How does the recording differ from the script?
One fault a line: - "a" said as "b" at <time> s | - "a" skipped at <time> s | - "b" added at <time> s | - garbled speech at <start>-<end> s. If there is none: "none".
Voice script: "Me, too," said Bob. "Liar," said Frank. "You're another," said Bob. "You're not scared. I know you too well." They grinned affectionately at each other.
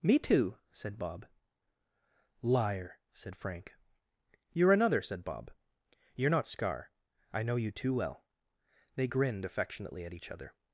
- "scared" said as "scar" at 6.5 s